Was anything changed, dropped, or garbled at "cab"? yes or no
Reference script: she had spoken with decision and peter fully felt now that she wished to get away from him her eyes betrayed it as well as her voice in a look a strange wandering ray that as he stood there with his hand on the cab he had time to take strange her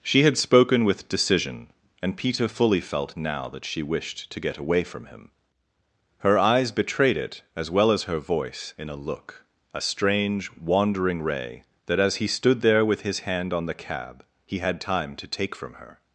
no